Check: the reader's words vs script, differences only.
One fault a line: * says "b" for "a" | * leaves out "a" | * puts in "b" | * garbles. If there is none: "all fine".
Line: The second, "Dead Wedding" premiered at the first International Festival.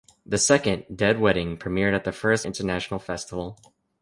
all fine